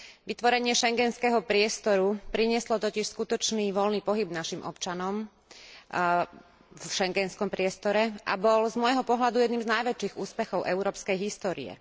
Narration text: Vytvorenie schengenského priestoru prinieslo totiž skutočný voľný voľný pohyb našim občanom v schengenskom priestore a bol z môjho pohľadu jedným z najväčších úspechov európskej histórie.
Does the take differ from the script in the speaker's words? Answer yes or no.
yes